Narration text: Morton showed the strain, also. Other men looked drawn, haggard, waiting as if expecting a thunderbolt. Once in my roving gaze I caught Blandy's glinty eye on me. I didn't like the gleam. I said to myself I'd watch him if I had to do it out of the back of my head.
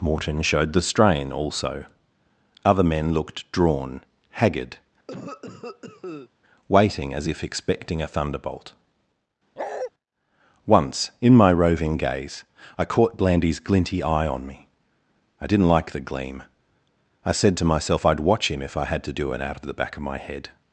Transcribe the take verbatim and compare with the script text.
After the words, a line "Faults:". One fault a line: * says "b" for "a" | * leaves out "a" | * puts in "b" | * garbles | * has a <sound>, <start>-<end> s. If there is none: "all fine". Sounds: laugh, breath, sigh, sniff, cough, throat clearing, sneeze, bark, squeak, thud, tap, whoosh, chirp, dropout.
Morton showed the strain, also. Other men looked drawn, haggard, waiting as if expecting a thunderbolt. Once in my roving gaze I caught Blandy's glinty eye on me. I didn't like the gleam. I said to myself I'd watch him if I had to do it out of the back of my head.
Faults:
* has a cough, 5.1-6.3 s
* has a bark, 9.6-9.9 s